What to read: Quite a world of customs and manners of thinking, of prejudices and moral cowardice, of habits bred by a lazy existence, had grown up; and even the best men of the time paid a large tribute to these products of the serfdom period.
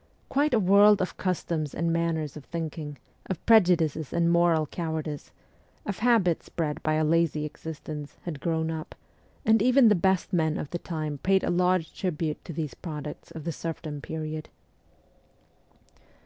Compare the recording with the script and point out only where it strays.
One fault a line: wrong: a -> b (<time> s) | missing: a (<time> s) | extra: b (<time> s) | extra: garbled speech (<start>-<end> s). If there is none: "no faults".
no faults